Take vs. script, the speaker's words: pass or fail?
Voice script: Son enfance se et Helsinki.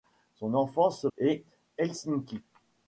pass